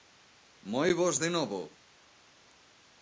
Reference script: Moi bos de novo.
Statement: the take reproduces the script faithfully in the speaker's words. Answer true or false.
true